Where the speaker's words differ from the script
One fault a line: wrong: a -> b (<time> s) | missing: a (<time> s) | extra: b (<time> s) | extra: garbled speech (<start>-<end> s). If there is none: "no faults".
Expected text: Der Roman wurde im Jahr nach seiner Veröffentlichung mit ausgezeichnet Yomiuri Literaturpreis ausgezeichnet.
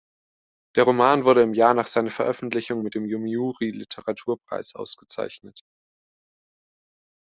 wrong: ausgezeichnet -> dem (2.9 s)